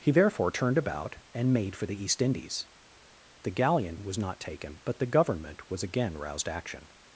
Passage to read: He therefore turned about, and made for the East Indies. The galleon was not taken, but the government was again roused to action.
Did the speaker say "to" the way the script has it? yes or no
no